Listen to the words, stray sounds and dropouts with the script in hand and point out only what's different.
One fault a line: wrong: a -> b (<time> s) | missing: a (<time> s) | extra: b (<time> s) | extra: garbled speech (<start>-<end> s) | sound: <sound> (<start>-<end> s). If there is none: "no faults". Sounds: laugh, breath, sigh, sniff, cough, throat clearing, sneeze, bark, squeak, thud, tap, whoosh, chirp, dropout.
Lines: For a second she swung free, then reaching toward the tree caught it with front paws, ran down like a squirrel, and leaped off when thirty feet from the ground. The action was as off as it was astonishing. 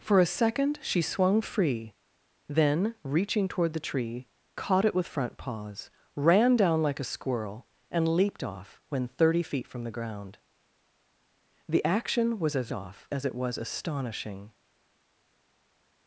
no faults